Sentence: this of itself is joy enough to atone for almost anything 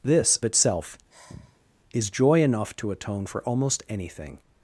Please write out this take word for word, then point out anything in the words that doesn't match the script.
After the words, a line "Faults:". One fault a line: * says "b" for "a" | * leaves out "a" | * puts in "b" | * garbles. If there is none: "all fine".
this itself is joy enough to atone for almost anything
Faults:
* leaves out "of"